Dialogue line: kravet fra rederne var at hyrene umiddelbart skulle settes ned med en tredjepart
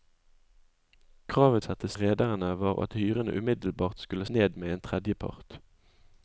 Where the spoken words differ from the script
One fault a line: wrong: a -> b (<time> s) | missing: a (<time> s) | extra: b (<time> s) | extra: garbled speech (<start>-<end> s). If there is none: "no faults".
wrong: fra -> settes (1.6 s)
missing: settes (4.3 s)